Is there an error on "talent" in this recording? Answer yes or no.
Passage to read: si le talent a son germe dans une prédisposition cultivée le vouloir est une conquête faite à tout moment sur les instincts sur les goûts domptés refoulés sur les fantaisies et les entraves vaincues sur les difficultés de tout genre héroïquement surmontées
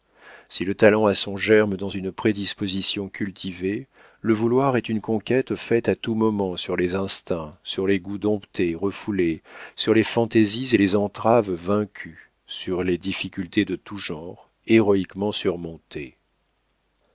no